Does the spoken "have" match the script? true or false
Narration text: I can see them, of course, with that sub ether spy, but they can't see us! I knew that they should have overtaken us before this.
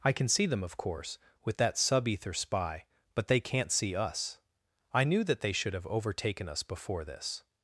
true